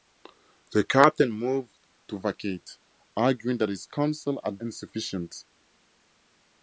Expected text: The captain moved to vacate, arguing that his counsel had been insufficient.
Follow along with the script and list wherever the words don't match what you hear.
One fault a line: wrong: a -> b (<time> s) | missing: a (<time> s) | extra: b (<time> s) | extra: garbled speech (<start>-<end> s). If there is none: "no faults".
missing: been (4.6 s)